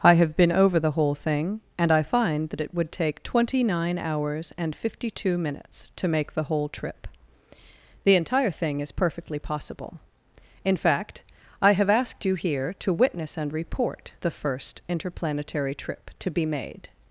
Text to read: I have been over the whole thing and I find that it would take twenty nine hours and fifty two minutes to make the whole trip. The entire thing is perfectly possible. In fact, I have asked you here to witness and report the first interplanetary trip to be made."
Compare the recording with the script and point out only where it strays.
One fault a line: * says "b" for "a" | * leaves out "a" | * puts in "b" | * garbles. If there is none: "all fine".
all fine